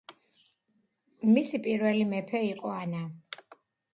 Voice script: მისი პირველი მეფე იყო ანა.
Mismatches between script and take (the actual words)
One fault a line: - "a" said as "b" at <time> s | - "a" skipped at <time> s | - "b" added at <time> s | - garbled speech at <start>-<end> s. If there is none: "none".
none